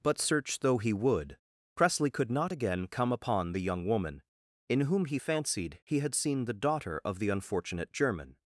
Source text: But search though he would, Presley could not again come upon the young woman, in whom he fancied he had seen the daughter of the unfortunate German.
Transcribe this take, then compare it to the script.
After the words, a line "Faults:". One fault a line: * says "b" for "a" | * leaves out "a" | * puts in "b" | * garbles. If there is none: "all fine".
But search though he would, Presley could not again come upon the young woman, in whom he fancied he had seen the daughter of the unfortunate German.
Faults:
all fine